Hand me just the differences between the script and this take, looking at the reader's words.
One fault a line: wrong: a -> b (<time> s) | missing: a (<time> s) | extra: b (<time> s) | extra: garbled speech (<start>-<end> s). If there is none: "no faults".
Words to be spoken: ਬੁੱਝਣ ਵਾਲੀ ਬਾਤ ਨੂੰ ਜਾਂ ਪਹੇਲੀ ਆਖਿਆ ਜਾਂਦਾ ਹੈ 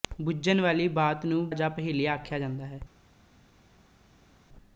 no faults